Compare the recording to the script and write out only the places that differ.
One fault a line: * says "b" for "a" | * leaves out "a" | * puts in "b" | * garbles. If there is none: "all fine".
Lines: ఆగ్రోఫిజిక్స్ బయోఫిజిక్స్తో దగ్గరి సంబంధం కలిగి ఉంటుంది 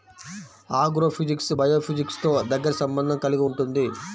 all fine